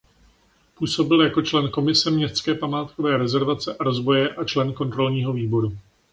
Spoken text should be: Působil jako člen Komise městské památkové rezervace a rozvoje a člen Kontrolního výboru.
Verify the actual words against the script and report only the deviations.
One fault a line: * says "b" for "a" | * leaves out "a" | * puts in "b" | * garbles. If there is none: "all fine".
all fine